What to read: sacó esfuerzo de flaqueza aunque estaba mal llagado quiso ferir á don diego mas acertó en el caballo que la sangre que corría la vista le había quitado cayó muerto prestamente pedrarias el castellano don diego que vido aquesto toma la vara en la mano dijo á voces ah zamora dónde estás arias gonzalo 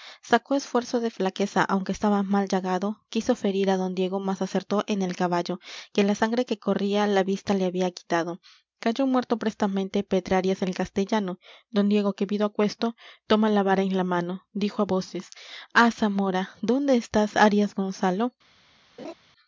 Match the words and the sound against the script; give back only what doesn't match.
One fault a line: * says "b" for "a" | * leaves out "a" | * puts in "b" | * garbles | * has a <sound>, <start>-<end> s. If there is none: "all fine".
* has a laugh, 19.0-19.1 s